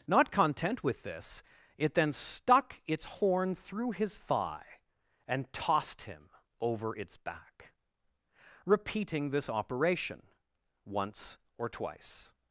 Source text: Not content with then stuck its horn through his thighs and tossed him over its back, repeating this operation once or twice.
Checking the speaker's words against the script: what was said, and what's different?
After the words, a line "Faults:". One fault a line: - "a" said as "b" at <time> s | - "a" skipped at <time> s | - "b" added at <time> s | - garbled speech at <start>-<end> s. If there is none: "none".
Not content with this, it then stuck its horn through his thigh and tossed him over its back, repeating this operation once or twice.
Faults:
- "this it" added at 1.0 s
- "thighs" said as "thigh" at 4.2 s